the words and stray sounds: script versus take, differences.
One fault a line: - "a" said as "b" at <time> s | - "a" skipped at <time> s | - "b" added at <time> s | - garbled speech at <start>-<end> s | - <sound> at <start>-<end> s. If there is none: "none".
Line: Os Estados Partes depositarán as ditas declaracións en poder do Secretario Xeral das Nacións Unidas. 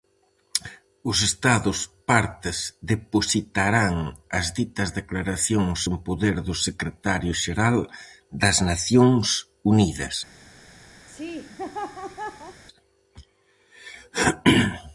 - laugh at 11.1-12.6 s